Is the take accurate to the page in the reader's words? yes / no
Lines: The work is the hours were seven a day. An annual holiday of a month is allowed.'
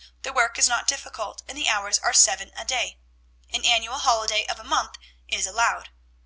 no